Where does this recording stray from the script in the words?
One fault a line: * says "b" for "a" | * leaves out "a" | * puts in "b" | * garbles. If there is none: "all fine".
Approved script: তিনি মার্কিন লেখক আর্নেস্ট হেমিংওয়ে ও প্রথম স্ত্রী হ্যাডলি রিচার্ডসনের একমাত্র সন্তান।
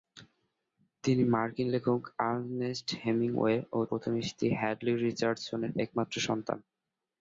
all fine